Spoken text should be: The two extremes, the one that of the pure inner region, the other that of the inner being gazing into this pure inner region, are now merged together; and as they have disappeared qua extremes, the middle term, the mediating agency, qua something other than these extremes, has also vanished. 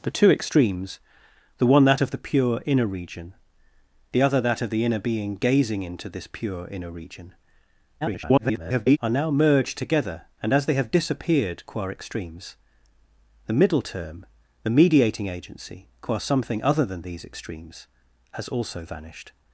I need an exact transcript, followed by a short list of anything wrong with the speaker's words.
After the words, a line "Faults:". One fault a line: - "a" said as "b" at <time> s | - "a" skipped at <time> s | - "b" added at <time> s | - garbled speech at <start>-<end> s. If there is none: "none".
The two extremes, the one that of the pure inner region, the other that of the inner being gazing into this pure inner region, [garbled] are now merged together; and as they have disappeared qua extremes, the middle term, the mediating agency, qua something other than these extremes, has also vanished.
Faults:
- garbled speech at 8.0-9.0 s